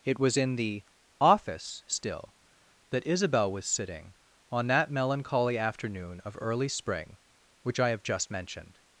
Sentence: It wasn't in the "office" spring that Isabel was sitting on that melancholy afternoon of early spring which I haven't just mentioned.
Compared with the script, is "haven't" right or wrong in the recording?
wrong